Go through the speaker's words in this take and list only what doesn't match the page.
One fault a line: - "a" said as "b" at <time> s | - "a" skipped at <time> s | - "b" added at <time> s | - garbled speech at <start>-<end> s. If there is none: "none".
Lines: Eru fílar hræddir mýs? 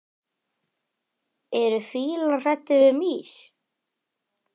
- "við" added at 2.8 s